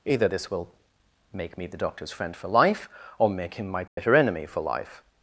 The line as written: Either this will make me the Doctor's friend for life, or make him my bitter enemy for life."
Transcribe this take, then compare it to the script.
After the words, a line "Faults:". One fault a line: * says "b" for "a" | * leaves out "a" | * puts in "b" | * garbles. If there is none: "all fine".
Either this will make me the Doctor's friend for life, or make him my bitter enemy for life."
Faults:
all fine